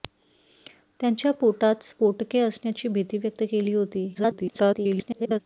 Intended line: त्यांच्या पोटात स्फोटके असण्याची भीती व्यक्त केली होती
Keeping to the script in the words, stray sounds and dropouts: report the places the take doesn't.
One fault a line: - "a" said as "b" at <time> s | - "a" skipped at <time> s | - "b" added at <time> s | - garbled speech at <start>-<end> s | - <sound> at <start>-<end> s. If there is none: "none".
- garbled speech at 4.1-5.4 s